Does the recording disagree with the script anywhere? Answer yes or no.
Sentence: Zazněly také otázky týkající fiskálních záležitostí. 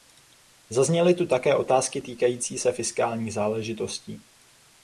yes